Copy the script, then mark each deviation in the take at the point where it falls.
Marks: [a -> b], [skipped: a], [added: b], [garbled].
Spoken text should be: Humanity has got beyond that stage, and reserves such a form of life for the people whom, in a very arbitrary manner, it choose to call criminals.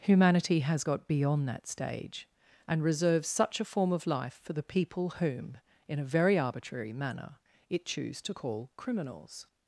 Humanity has got beyond that stage, and reserves such a form of life for the people whom, in a very arbitrary manner, it choose to call criminals.